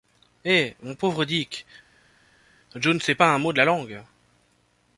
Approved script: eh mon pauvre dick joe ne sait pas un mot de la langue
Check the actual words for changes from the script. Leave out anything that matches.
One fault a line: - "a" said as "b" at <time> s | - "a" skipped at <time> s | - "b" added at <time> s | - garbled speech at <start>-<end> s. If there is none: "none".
none